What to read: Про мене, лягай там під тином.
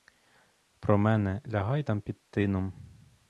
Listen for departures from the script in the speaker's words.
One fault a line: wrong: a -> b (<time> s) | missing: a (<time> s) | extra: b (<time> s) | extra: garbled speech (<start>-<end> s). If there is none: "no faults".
no faults